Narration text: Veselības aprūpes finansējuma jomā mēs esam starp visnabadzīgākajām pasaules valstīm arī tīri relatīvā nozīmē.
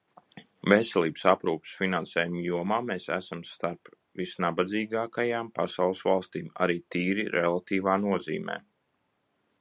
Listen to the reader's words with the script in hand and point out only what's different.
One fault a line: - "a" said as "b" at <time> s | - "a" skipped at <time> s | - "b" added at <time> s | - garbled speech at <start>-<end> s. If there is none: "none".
none